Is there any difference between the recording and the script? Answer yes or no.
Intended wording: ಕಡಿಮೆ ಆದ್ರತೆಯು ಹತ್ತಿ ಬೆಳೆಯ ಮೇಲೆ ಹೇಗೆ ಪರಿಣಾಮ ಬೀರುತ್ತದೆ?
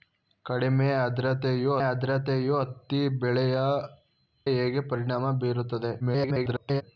yes